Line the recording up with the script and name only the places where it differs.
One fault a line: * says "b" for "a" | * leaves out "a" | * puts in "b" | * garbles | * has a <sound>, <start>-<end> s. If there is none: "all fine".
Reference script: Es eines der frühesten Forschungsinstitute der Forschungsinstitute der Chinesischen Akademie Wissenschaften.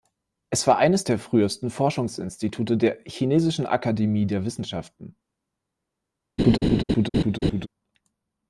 * puts in "war"
* leaves out "Forschungsinstitute der"
* puts in "der"
* has a laugh, 6.4-7.7 s